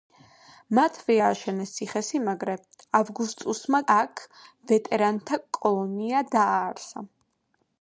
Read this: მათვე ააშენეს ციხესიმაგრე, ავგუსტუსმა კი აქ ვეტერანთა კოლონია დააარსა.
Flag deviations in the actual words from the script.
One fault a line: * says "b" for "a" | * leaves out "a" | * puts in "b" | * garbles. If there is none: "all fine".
* leaves out "კი"